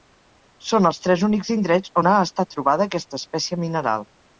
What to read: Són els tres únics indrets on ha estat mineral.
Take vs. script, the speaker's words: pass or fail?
fail